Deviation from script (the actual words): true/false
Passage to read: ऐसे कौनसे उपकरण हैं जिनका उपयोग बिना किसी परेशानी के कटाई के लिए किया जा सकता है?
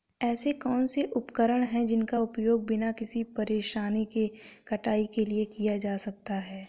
false